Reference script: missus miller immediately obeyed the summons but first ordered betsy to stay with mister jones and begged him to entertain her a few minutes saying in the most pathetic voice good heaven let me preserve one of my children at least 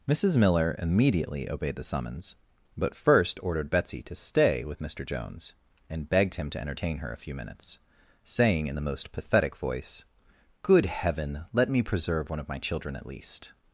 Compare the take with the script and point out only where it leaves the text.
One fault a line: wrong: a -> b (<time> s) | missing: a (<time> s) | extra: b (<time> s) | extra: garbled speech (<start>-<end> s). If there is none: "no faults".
no faults